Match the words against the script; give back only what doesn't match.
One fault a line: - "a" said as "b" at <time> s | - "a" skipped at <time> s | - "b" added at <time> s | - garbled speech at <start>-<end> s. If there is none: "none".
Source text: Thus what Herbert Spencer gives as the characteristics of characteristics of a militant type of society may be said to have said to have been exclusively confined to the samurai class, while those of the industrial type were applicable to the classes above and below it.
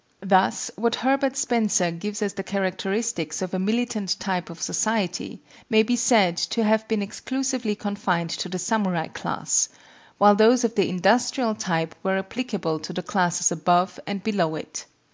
- "characteristics of" skipped at 3.5 s
- "said to have" skipped at 6.9 s